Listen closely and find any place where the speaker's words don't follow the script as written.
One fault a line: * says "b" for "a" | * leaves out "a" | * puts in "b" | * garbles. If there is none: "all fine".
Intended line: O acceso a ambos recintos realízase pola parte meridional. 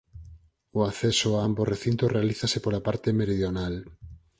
all fine